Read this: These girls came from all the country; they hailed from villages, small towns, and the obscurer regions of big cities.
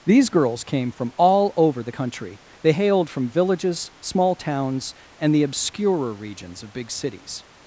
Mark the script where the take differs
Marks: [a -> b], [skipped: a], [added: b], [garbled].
These girls came from all [added: over] the country; they hailed from villages, small towns, and the obscurer regions of big cities.